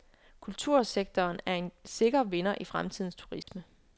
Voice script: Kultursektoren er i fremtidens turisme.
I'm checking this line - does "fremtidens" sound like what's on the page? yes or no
yes